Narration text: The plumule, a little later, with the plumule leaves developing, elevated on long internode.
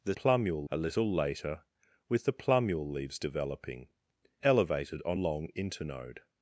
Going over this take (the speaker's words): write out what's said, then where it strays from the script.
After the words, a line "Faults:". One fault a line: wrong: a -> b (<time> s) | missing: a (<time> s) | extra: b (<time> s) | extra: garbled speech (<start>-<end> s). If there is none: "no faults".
The plumule, a little later, with the plumule leaves developing, elevated on long internode.
Faults:
no faults